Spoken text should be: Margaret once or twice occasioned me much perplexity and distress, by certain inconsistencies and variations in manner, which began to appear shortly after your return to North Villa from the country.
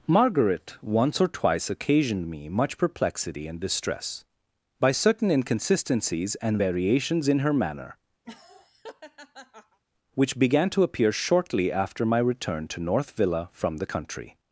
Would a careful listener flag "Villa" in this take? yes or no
no